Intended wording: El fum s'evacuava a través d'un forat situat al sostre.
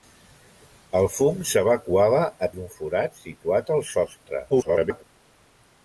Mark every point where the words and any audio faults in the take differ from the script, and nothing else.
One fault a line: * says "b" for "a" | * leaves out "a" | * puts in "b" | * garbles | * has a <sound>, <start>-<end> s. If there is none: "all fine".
* leaves out "través"
* garbles